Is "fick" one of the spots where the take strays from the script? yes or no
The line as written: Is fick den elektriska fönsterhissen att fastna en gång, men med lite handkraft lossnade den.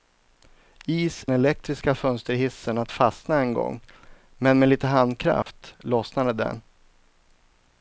yes